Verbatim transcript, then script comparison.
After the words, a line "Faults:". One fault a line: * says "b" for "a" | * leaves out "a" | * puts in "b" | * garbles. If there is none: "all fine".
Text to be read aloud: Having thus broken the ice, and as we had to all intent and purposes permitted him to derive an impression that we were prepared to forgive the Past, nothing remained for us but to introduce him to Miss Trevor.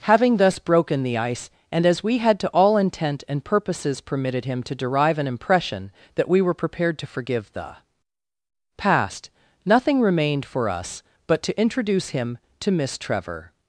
Having thus broken the ice, and as we had to all intent and purposes permitted him to derive an impression that we were prepared to forgive the Past, nothing remained for us but to introduce him to Miss Trevor.
Faults:
all fine